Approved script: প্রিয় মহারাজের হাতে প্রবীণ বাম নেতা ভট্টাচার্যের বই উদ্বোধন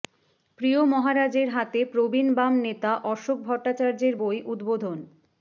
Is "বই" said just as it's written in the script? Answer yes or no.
yes